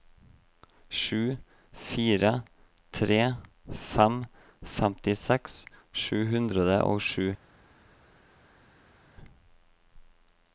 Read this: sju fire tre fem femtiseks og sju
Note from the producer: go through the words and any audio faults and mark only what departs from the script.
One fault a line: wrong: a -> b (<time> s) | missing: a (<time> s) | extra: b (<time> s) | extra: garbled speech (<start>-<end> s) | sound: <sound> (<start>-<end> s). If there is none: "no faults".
extra: sju hundre (6.0 s)